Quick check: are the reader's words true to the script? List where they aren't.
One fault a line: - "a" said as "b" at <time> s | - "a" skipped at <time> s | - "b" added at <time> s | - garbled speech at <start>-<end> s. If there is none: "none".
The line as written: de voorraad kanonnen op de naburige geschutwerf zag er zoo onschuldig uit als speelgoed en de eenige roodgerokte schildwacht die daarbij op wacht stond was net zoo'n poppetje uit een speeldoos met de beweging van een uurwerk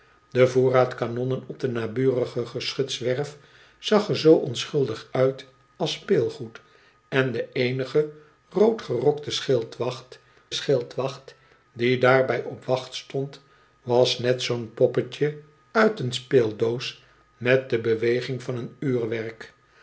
- "schildwacht" added at 10.5 s